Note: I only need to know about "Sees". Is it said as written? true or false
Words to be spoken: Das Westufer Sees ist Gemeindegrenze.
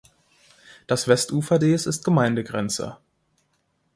true